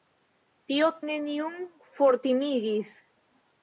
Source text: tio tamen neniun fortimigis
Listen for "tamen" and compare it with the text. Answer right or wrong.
wrong